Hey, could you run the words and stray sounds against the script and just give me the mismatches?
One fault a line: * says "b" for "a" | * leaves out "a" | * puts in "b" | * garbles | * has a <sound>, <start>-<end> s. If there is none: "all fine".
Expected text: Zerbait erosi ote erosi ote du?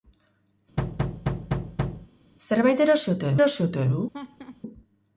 * has a thud, 0.8-2.1 s
* has a laugh, 4.1-4.6 s